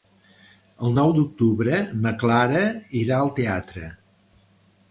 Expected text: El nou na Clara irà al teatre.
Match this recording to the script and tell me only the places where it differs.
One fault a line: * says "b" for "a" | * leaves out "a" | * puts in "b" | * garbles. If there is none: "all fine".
* puts in "d'octubre"